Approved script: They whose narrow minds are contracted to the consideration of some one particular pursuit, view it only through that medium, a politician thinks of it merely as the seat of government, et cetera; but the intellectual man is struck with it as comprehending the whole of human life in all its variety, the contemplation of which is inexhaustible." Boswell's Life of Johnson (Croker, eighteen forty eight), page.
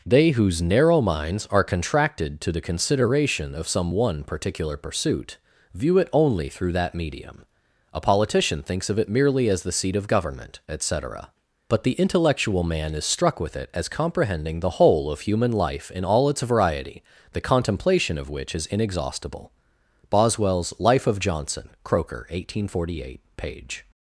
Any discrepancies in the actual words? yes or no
no